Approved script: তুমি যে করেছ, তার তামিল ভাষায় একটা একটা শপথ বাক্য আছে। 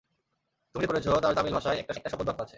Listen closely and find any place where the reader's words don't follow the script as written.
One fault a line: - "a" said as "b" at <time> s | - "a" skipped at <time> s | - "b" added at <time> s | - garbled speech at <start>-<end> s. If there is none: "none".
none